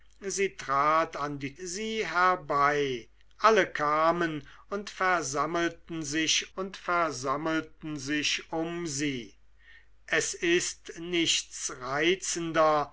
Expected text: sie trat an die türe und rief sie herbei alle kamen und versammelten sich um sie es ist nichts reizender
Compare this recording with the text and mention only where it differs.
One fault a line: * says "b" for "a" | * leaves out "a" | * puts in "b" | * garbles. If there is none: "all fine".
* leaves out "türe und rief"
* puts in "und versammelten sich"